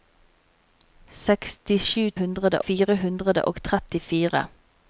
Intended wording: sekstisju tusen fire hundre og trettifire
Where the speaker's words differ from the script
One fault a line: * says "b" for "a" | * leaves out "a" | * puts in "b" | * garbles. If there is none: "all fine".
* says "hundre" for "tusen"